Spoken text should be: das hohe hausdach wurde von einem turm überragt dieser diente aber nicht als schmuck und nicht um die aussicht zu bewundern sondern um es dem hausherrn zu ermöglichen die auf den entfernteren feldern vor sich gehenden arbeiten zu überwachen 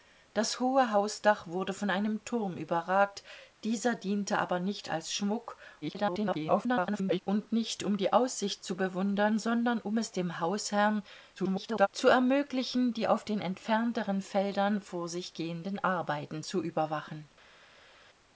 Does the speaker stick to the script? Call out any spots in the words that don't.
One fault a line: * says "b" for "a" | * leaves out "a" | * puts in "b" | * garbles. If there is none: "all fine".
* garbles
* garbles